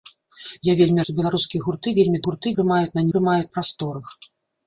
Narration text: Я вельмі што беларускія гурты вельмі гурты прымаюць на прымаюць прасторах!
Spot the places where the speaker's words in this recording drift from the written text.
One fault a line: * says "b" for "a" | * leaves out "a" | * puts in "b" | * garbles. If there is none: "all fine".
all fine